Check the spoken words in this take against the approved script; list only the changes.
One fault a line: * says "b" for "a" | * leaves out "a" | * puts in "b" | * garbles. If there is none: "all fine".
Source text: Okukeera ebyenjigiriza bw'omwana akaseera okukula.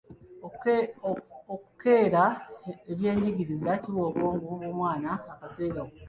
* puts in "kiwa obwongo"